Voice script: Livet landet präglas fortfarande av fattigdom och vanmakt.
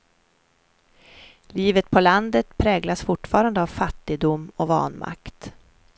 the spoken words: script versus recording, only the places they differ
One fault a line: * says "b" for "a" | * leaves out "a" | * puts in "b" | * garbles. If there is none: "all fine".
* puts in "på"